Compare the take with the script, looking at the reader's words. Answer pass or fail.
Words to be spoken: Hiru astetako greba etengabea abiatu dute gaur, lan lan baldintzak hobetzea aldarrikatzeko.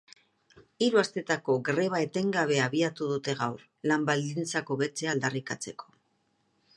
fail